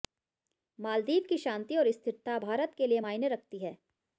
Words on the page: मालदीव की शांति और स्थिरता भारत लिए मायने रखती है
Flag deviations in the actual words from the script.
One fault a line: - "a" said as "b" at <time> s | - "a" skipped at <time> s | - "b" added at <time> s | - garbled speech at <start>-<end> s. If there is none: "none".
- "के" added at 2.8 s